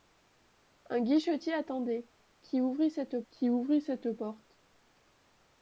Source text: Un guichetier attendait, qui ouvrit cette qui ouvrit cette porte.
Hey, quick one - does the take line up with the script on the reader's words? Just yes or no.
yes